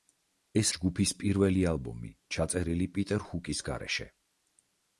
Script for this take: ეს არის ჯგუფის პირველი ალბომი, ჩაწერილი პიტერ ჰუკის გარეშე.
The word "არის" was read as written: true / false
false